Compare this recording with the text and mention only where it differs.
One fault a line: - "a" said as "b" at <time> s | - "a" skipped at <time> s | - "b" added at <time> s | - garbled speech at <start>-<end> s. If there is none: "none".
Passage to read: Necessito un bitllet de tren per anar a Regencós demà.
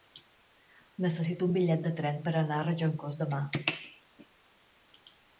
none